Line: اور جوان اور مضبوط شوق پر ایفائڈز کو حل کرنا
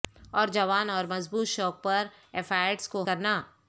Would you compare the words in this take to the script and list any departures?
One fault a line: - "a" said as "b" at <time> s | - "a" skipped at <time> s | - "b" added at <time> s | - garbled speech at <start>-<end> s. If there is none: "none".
- "حل" skipped at 3.0 s